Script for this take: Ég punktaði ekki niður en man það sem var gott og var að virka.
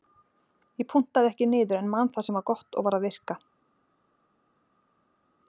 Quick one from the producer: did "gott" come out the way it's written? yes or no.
yes